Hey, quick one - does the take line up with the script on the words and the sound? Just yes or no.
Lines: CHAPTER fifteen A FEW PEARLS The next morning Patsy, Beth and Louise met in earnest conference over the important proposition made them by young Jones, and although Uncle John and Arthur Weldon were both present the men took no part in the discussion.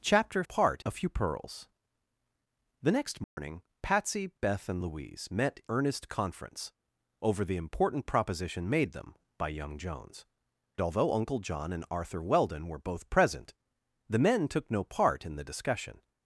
no